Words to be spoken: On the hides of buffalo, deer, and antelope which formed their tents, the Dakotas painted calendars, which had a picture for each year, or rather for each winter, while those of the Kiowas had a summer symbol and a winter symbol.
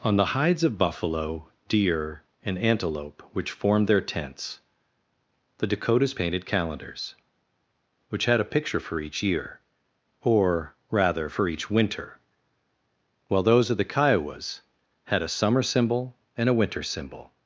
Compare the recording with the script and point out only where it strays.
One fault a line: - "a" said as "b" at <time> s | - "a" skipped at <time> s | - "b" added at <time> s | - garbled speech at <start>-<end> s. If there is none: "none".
none